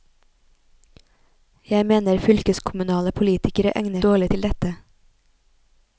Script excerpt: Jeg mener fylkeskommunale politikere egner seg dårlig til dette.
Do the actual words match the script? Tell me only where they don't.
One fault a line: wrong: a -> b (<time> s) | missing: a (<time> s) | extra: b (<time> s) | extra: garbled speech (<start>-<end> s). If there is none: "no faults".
missing: seg (4.0 s)